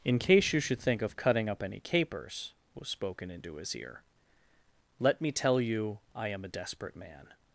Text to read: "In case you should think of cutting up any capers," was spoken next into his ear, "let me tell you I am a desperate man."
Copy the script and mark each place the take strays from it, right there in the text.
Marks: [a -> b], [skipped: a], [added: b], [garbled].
"In case you should think of cutting up any capers," was spoken [skipped: next] into his ear, "let me tell you I am a desperate man."